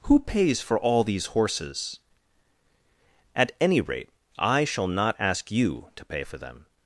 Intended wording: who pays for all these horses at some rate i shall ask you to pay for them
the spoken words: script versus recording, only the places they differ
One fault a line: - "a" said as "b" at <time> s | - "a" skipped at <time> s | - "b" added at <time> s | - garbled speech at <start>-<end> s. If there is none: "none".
- "some" said as "any" at 3.6 s
- "not" added at 4.9 s